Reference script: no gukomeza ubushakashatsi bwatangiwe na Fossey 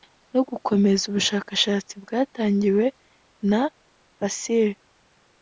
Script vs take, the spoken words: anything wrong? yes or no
no